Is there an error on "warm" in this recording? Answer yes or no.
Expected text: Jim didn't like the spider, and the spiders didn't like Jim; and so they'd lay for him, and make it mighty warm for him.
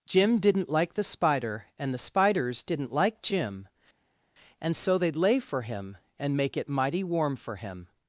no